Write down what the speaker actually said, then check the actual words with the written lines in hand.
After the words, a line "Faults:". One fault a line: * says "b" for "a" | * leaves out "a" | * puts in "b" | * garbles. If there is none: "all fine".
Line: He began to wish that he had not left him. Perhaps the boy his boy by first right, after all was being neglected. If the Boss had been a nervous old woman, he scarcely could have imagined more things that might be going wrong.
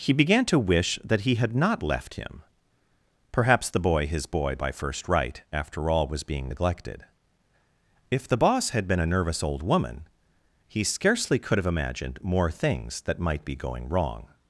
He began to wish that he had not left him. Perhaps the boy his boy by first right, after all was being neglected. If the Boss had been a nervous old woman, he scarcely could have imagined more things that might be going wrong.
Faults:
all fine